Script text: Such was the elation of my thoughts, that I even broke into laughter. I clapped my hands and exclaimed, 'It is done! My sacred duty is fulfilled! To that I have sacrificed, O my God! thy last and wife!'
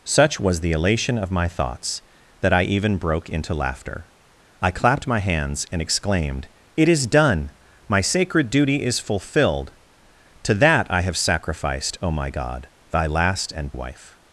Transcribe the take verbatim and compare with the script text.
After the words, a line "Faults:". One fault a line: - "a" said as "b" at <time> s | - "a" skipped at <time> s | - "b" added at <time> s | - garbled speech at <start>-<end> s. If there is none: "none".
Such was the elation of my thoughts, that I even broke into laughter. I clapped my hands and exclaimed, 'It is done! My sacred duty is fulfilled! To that I have sacrificed, O my God! thy last and wife!'
Faults:
none